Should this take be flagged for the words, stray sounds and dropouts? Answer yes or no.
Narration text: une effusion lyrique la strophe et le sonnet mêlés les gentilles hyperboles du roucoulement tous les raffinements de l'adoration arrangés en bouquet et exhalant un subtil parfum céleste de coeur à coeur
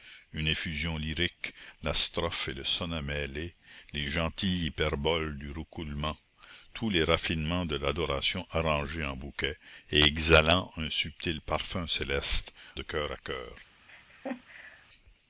yes